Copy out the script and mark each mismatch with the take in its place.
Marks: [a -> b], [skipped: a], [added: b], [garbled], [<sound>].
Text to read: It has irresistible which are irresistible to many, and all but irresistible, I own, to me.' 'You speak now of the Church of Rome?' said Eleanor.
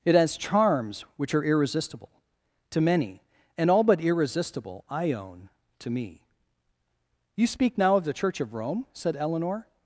It has [irresistible -> charms] which are irresistible to many, and all but irresistible, I own, to me.' 'You speak now of the Church of Rome?' said Eleanor.